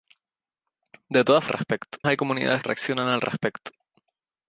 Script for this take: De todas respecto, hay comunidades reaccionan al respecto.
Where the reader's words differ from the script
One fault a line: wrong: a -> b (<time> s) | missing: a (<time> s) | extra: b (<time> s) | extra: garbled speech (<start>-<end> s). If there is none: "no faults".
no faults